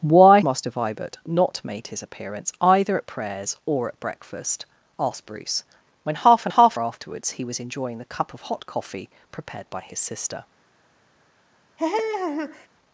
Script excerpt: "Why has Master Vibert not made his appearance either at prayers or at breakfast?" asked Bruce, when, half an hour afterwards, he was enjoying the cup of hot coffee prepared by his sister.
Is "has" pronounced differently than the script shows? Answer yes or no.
yes